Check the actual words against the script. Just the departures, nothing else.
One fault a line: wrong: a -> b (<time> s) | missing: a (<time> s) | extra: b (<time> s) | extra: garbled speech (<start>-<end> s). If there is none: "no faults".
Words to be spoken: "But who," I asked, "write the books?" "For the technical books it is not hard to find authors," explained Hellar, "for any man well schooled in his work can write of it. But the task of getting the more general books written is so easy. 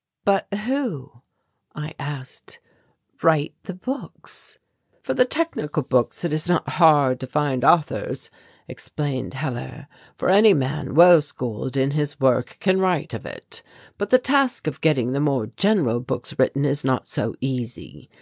extra: not (16.8 s)